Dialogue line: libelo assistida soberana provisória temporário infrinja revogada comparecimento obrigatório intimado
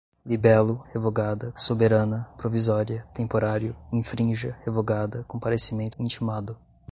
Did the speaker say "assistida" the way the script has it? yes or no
no